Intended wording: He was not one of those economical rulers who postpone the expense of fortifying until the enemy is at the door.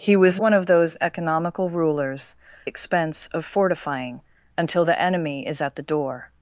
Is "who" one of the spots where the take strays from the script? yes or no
yes